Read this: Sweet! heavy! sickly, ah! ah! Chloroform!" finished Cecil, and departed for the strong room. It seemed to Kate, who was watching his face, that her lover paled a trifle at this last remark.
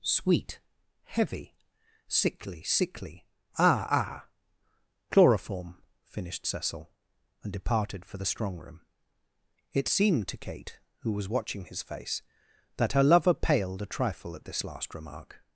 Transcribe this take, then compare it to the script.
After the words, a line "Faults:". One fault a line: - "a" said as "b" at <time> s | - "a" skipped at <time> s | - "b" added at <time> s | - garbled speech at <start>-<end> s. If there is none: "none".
Sweet! heavy! sickly sickly, ah! ah! Chloroform!" finished Cecil, and departed for the strong room. It seemed to Kate, who was watching his face, that her lover paled a trifle at this last remark.
Faults:
- "sickly" added at 2.6 s